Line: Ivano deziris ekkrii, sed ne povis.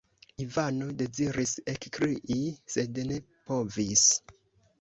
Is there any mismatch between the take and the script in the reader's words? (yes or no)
no